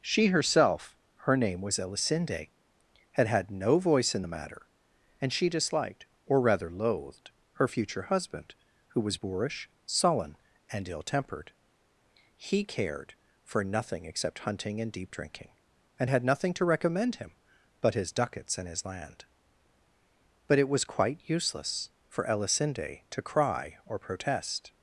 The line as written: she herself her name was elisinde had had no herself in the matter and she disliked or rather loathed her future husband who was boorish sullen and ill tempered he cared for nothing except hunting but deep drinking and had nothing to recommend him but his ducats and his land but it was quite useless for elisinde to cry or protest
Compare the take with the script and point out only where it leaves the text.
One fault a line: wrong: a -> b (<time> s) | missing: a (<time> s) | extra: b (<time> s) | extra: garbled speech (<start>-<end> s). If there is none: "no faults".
wrong: herself -> voice (3.8 s)
wrong: but -> and (14.8 s)